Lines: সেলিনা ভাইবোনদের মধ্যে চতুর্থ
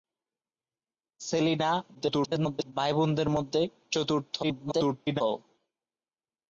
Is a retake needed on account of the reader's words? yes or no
yes